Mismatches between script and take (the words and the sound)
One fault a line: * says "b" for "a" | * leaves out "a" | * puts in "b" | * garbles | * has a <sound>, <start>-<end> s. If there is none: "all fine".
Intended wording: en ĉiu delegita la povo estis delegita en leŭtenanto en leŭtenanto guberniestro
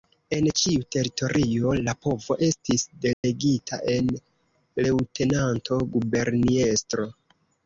* says "teritorio" for "delegita"
* has a dropout, 3.1-3.2 s
* leaves out "en leŭtenanto"